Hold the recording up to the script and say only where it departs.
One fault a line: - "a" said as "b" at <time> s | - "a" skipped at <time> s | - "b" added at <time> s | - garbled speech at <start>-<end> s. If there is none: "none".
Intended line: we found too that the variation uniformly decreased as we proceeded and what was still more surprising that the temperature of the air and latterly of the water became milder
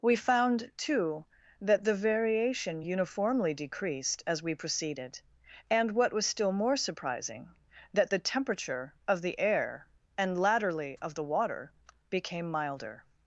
none